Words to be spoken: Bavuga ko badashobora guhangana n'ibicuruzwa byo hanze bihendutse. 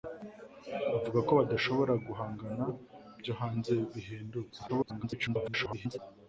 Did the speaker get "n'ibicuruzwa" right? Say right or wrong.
wrong